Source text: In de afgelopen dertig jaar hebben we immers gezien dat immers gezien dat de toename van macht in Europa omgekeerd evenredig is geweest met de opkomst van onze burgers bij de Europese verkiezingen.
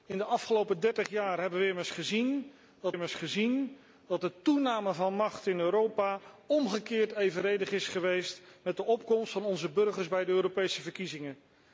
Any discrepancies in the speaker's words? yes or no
no